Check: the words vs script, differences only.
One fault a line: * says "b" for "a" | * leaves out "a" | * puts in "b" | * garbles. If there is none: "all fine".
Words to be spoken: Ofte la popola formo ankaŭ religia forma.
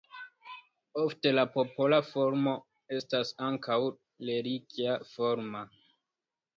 * puts in "estas"